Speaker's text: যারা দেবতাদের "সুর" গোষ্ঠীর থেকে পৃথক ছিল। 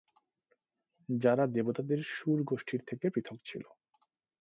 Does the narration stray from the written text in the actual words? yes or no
no